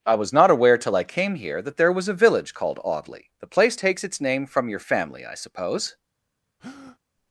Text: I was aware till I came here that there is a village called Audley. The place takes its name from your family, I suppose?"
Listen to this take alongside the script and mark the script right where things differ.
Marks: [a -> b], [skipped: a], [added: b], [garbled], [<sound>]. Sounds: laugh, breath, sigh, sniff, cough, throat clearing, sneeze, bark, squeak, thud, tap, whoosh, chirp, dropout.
I was [added: not] aware till I came here that there [is -> was] a village called Audley. The place takes its name from your family, I suppose?" [breath]